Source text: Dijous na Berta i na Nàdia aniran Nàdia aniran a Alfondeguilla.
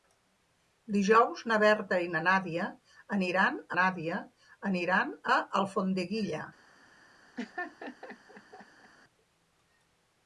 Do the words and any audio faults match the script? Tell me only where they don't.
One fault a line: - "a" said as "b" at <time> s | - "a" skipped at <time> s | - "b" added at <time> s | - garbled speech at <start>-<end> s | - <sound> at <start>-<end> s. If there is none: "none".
- laugh at 7.4-8.9 s